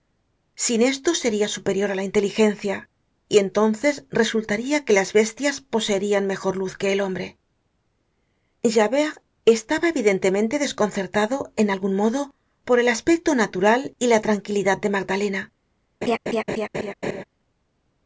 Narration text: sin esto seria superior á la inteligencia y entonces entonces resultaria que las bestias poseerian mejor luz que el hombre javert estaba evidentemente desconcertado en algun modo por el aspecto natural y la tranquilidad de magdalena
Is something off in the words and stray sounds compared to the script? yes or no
yes